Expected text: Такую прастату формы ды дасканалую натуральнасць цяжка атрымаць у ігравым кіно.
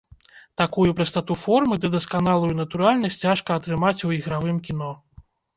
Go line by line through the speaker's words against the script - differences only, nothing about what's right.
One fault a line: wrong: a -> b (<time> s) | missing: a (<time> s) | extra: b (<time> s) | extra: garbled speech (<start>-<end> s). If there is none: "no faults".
no faults